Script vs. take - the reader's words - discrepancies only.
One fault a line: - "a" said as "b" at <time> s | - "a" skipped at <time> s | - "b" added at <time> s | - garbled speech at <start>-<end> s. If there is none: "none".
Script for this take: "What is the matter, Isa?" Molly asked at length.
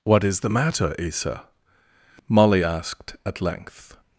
none